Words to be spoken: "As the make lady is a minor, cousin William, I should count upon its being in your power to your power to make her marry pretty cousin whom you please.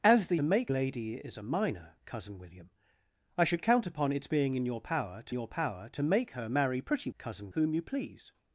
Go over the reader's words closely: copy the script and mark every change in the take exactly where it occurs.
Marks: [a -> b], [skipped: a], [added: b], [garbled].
"As the make lady is a minor, cousin William, I should count upon its being in your power to your power to make her marry pretty cousin whom you please.